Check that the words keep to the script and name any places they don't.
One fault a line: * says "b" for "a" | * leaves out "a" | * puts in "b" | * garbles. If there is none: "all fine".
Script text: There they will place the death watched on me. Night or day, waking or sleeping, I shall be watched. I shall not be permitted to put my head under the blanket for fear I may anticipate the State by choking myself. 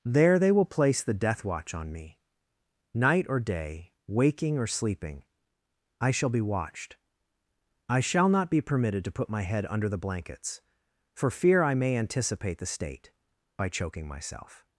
* says "watch" for "watched"
* says "blankets" for "blanket"